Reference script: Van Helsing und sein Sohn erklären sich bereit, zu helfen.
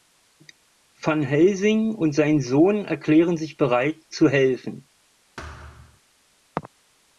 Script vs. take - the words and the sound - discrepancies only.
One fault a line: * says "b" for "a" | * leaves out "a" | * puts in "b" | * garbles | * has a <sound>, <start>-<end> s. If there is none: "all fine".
* has a thud, 5.4-6.0 s